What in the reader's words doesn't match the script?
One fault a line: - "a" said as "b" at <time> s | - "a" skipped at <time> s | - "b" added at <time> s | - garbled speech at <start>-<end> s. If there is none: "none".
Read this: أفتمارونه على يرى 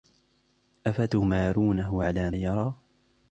none